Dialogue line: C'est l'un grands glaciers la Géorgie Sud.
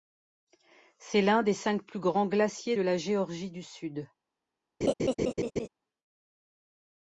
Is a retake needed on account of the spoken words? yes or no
yes